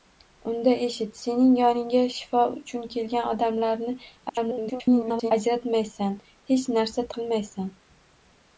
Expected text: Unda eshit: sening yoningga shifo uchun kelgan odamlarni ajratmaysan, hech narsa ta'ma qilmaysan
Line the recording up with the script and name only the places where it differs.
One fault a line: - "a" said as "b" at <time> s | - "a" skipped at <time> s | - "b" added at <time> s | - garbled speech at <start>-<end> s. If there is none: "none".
- garbled speech at 4.3-5.3 s
- "ta'ma" skipped at 7.1 s